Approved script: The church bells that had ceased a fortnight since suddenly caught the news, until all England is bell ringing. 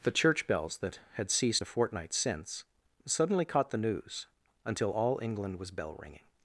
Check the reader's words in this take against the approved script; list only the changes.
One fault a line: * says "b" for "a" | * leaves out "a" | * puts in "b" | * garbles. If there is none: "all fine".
* says "was" for "is"